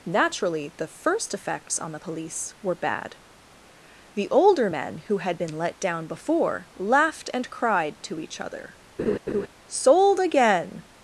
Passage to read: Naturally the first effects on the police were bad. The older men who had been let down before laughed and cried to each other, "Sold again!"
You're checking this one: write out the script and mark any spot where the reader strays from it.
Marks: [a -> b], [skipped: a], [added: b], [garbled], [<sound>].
Naturally the first effects on the police were bad. The older men who had been let down before laughed and cried to each other, [laugh] "Sold again!"